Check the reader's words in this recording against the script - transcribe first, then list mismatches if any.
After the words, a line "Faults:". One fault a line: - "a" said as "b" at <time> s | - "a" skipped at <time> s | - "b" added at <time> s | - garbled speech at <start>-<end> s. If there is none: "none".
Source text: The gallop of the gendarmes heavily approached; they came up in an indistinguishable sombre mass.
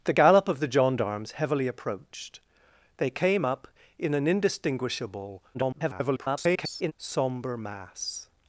The gallop of the gendarmes heavily approached; they came up in an indistinguishable [garbled] sombre mass.
Faults:
- garbled speech at 5.5-6.9 s